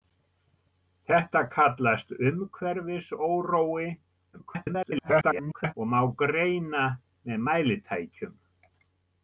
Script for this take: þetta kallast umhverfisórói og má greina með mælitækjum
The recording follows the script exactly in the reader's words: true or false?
false